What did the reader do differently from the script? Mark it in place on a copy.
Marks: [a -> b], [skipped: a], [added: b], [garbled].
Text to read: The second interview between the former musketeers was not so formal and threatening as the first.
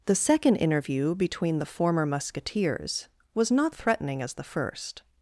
The second interview between the former musketeers was not [skipped: so formal and] threatening as the first.